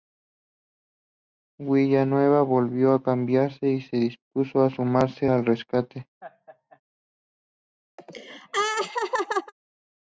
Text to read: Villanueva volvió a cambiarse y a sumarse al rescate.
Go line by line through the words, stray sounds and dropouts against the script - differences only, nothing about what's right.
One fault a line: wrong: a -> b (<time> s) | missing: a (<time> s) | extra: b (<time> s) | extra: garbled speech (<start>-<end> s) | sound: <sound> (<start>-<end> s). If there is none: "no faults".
extra: se dispuso (3.8 s)
sound: laugh (6.2-6.8 s)
sound: laugh (8.0-9.5 s)